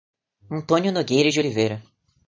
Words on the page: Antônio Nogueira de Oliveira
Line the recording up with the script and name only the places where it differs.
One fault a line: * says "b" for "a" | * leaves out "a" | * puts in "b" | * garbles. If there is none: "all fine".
all fine